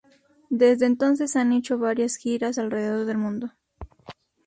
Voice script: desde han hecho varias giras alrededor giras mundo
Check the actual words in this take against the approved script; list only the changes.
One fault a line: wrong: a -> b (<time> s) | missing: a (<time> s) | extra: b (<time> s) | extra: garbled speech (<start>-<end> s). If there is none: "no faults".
extra: entonces (0.9 s)
wrong: giras -> del (3.0 s)